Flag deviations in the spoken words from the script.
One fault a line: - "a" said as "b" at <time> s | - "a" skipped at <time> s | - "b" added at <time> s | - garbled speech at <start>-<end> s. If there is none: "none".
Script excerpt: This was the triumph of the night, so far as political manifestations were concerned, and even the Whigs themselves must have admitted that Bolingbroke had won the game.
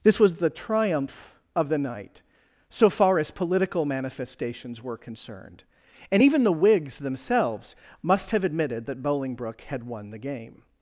none